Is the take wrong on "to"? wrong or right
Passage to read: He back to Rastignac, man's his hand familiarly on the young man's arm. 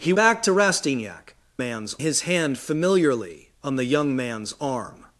right